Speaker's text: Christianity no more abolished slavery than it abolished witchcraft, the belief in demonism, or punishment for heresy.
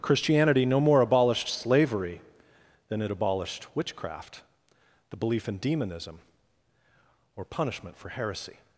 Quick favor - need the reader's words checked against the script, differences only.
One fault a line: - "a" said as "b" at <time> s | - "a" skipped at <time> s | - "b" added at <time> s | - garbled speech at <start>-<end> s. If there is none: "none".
none